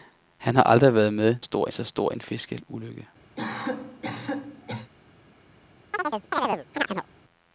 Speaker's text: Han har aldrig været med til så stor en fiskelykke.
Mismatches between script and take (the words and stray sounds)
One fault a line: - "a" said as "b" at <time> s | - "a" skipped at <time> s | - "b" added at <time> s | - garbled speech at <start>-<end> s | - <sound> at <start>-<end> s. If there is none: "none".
- "til" said as "stor" at 1.4 s
- cough at 3.4-4.9 s
- chirp at 5.9-7.1 s